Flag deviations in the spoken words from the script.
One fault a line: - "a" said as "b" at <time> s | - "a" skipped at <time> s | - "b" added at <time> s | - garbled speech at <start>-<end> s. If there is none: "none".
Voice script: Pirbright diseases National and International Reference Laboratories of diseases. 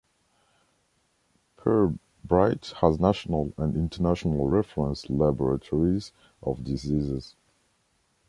- "diseases" said as "has" at 2.8 s